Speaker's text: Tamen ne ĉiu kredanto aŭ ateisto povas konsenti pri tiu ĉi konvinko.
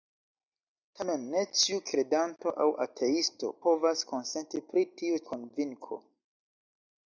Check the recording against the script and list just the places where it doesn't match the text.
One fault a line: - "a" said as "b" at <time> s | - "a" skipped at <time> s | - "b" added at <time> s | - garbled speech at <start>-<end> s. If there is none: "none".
- "ĉi" skipped at 5.2 s